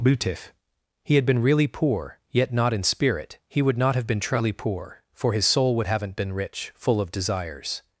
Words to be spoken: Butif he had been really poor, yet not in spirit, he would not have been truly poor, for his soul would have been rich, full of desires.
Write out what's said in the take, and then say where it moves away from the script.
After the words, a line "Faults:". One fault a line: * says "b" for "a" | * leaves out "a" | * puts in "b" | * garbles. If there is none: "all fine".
Butif he had been really poor, yet not in spirit, he would not have been truly poor, for his soul would haven't been rich, full of desires.
Faults:
* says "haven't" for "have"